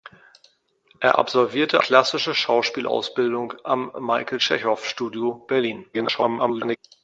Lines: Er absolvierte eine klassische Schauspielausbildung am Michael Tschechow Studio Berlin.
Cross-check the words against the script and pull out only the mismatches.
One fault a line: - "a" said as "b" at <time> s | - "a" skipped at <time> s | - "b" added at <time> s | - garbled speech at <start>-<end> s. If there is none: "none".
- "eine" skipped at 1.8 s
- garbled speech at 5.9-6.8 s